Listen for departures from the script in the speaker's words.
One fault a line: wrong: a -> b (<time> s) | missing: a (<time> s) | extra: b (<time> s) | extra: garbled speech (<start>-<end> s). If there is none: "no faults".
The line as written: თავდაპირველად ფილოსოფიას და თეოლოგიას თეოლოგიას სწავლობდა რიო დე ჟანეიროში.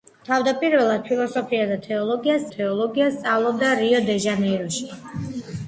no faults